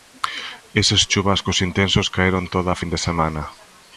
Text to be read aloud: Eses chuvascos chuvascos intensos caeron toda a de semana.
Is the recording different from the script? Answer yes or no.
yes